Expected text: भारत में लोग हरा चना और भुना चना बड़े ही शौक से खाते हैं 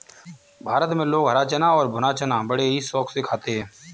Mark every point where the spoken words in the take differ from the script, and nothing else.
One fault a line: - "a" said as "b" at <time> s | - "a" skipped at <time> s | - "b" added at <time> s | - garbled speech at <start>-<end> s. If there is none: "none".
none